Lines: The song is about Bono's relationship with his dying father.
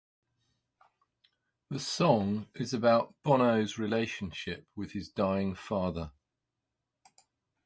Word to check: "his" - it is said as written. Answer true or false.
true